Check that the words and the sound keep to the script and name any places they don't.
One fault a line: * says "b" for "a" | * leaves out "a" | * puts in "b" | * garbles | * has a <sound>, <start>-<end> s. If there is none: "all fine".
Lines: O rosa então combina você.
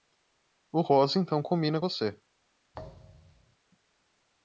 * has a thud, 2.7-3.6 s